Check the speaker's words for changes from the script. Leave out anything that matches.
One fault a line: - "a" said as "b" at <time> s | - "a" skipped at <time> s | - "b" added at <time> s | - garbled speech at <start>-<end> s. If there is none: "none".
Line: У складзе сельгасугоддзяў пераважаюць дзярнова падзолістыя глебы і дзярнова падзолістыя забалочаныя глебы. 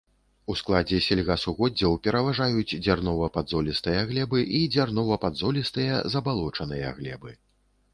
none